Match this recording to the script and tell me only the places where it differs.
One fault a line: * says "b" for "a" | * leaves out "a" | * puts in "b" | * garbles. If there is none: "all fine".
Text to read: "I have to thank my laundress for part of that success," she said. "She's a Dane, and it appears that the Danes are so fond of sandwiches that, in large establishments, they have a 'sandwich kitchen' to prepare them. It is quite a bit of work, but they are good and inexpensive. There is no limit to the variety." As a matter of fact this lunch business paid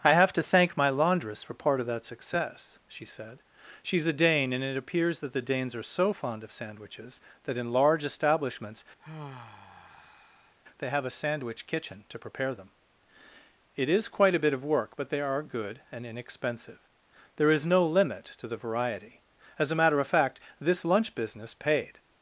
all fine